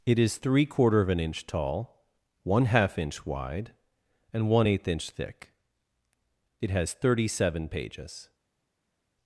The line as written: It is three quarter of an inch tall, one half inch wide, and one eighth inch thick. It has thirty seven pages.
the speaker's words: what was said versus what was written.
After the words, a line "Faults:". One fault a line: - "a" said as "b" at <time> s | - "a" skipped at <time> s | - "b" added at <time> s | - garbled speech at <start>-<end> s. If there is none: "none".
It is three quarter of an inch tall, one half inch wide, and one eighth inch thick. It has thirty seven pages.
Faults:
none